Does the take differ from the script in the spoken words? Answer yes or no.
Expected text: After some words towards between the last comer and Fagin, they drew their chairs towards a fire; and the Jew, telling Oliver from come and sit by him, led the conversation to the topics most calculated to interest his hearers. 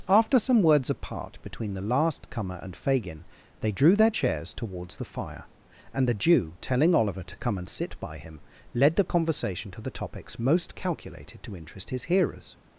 yes